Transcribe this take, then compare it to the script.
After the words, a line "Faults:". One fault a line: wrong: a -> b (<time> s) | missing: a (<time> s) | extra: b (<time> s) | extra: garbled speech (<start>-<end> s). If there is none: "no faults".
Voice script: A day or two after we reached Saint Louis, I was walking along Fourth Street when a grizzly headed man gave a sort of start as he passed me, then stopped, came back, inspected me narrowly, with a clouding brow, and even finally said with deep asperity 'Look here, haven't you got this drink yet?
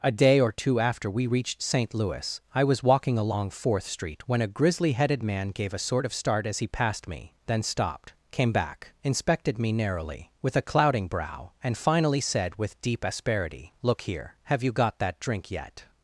A day or two after we reached Saint Louis, I was walking along Fourth Street when a grizzly headed man gave a sort of start as he passed me, then stopped, came back, inspected me narrowly, with a clouding brow, and finally said with deep asperity 'Look here, have you got that drink yet?
Faults:
missing: even (11.8 s)
wrong: haven't -> have (14.4 s)
wrong: this -> that (15.0 s)